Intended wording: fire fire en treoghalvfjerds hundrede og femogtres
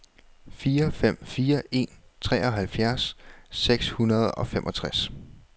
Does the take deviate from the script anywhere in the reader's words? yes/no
yes